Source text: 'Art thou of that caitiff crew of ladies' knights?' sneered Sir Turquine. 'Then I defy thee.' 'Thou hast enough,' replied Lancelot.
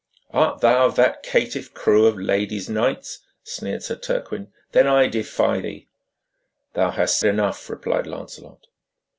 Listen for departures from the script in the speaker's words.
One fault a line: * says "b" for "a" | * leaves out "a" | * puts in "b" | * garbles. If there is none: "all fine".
all fine